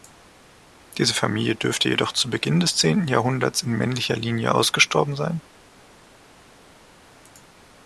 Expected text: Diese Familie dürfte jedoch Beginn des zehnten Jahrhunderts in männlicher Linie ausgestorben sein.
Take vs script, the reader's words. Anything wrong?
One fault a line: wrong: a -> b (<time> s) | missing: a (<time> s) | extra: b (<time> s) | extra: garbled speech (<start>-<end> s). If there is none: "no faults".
extra: zu (2.1 s)